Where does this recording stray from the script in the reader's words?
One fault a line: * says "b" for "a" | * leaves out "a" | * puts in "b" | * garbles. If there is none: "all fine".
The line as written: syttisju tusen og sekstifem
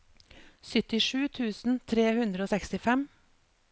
* puts in "tre hundre"